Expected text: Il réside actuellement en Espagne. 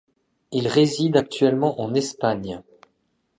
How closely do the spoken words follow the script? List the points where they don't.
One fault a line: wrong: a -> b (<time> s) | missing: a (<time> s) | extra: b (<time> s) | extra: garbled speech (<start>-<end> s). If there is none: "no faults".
no faults